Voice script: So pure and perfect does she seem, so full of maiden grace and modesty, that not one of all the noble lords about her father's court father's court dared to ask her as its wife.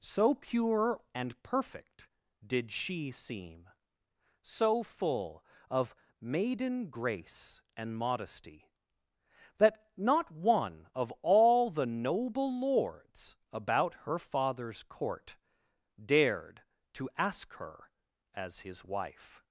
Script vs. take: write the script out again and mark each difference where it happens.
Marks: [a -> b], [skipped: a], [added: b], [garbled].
So pure and perfect [does -> did] she seem, so full of maiden grace and modesty, that not one of all the noble lords about her father's court [skipped: father's court] dared to ask her as [its -> his] wife.